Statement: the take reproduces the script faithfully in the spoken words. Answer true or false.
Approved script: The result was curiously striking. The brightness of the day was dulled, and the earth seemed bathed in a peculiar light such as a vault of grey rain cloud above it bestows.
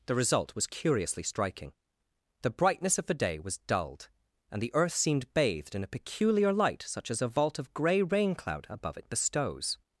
true